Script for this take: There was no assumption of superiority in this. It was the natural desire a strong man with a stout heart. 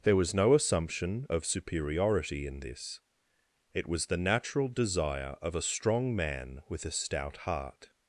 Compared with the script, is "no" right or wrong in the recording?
right